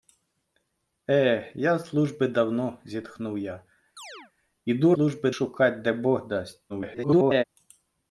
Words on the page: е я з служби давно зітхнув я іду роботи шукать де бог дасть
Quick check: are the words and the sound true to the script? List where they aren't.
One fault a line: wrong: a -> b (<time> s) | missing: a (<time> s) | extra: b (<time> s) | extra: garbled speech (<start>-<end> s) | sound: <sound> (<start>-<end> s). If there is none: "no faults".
sound: chirp (4.0-4.3 s)
wrong: роботи -> служби (4.9 s)
extra: garbled speech (6.7-7.4 s)